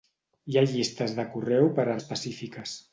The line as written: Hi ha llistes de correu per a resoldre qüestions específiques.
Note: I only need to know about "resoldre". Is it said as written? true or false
false